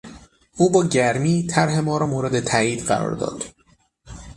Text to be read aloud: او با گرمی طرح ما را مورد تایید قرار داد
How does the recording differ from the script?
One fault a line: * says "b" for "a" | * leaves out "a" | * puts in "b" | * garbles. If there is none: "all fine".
all fine